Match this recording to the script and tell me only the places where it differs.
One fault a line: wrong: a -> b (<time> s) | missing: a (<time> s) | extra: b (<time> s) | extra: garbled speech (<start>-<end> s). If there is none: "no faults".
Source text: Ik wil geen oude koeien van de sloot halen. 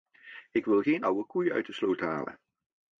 wrong: van -> uit (1.5 s)